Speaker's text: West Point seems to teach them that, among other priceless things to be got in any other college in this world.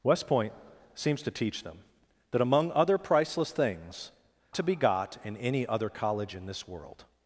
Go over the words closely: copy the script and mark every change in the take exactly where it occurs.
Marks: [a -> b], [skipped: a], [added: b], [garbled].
West Point seems to teach them that, among other priceless things to be got in any other college in this world.